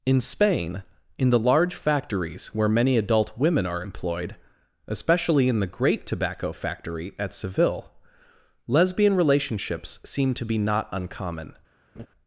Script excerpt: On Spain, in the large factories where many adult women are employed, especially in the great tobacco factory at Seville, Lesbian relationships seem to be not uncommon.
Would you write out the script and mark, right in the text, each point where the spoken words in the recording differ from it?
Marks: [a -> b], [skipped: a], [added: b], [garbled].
[On -> In] Spain, in the large factories where many adult women are employed, especially in the great tobacco factory at Seville, Lesbian relationships seem to be not uncommon.